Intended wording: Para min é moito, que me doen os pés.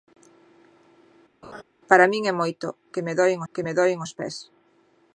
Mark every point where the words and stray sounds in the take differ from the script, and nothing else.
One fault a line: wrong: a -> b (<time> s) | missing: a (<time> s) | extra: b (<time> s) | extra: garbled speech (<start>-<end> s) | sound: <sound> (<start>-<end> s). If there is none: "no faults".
sound: laugh (1.4-1.6 s)
extra: que me doen (3.5 s)